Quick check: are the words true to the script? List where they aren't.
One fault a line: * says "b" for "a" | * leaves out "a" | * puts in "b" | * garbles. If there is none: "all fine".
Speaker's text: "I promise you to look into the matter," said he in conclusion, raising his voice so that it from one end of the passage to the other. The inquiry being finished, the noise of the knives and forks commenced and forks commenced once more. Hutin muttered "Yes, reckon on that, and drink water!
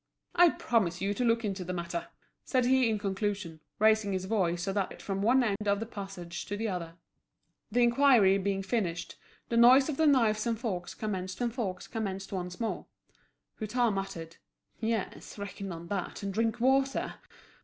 all fine